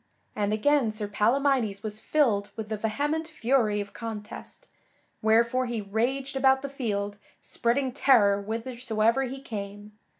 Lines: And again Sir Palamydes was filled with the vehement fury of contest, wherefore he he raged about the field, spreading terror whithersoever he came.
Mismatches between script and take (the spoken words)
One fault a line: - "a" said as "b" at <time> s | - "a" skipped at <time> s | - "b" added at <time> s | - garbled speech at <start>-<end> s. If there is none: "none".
- "he" skipped at 5.8 s